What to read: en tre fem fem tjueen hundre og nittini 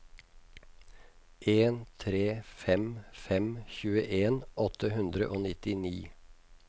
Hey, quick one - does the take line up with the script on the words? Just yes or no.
no